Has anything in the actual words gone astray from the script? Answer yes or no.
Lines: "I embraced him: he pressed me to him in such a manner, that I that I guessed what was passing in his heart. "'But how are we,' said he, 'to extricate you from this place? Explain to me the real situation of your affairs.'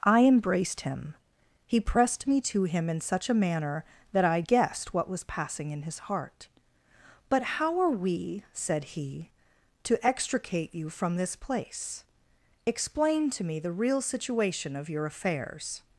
yes